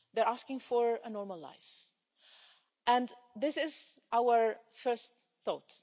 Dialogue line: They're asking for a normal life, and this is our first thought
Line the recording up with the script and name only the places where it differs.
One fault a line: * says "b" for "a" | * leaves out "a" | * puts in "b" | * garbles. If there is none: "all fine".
all fine